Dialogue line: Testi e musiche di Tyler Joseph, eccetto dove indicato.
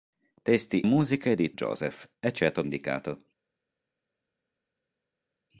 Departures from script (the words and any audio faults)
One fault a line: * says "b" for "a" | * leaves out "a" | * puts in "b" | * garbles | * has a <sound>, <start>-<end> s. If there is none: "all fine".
* leaves out "e"
* leaves out "Tyler"
* leaves out "dove"